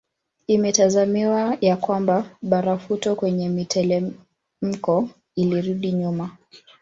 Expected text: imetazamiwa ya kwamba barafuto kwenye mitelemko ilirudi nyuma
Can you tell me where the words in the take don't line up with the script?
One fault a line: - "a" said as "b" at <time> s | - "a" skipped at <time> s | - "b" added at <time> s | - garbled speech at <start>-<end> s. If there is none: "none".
none